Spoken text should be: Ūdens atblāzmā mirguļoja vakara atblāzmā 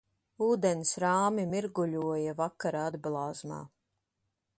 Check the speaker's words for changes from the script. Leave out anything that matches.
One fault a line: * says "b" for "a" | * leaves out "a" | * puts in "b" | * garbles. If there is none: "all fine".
* says "rāmi" for "atblāzmā"